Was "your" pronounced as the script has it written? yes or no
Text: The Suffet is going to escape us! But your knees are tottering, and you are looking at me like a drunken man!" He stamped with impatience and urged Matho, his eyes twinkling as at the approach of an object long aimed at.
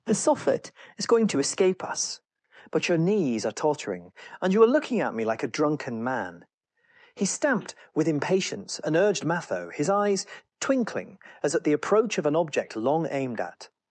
yes